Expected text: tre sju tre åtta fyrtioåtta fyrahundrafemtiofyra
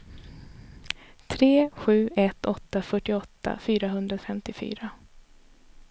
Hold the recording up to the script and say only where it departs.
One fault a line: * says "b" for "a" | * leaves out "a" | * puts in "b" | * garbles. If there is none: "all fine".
* says "ett" for "tre"